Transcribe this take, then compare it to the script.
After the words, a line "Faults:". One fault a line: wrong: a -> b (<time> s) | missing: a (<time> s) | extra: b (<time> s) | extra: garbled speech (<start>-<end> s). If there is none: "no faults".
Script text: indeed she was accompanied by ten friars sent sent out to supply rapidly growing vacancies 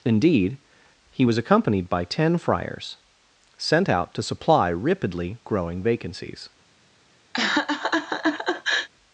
indeed he was accompanied by ten friars sent out to supply rapidly growing vacancies
Faults:
wrong: she -> he (1.1 s)
missing: sent (3.9 s)